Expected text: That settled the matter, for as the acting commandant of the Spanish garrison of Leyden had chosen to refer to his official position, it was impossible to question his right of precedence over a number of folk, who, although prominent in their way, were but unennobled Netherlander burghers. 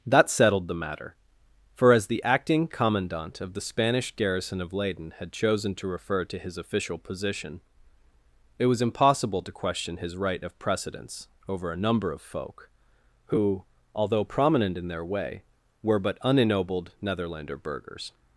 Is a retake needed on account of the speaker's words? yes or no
no